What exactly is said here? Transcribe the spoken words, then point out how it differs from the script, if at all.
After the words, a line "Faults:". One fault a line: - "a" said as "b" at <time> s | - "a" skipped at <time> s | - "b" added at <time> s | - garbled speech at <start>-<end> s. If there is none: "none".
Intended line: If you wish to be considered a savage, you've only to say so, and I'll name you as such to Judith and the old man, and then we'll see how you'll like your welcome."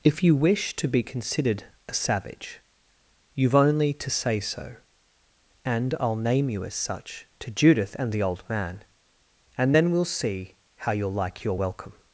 If you wish to be considered a savage, you've only to say so, and I'll name you as such to Judith and the old man, and then we'll see how you'll like your welcome."
Faults:
none